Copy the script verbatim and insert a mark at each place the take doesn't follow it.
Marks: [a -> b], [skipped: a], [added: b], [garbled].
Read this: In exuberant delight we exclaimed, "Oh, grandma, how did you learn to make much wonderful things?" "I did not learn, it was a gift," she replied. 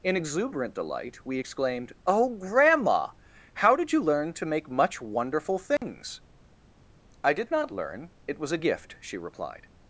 In exuberant delight we exclaimed, "Oh, grandma, how did you learn to make much wonderful things?" "I did not learn, it was a gift," she replied.